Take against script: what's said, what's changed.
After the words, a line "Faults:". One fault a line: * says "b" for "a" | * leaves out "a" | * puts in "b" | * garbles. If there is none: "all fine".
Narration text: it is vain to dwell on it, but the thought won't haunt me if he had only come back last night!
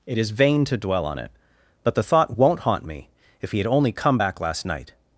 it is vain to dwell on it, but the thought won't haunt me if he had only come back last night!
Faults:
all fine